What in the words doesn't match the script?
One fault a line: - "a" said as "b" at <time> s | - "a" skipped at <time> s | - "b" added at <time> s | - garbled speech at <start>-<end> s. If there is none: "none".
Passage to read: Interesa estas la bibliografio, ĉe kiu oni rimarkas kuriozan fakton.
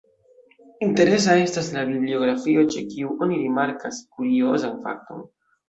none